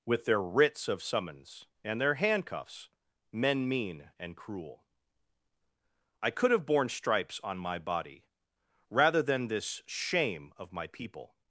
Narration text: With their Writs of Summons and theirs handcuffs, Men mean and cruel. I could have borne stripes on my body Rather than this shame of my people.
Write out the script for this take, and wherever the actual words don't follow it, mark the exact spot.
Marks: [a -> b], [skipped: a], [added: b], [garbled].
With their Writs of Summons and [theirs -> their] handcuffs, Men mean and cruel. I could have borne stripes on my body Rather than this shame of my people.